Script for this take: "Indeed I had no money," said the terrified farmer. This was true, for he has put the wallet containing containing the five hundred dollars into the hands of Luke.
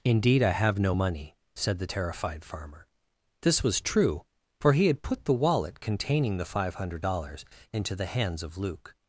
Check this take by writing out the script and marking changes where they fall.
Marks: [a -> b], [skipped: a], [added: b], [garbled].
"Indeed I [had -> have] no money," said the terrified farmer. This was true, for he [has -> had] put the wallet containing [skipped: containing] the five hundred dollars into the hands of Luke.